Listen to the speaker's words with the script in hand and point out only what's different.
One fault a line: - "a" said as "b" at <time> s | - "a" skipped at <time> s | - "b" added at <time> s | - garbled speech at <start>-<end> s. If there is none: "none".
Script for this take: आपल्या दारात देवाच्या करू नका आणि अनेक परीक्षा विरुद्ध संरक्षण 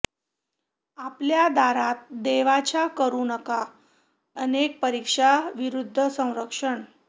- "आणि" skipped at 3.6 s